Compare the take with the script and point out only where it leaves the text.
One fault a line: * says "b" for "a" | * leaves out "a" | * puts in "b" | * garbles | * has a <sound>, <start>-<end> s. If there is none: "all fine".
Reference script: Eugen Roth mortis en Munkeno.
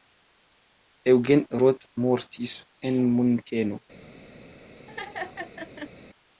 * has a laugh, 4.9-5.9 s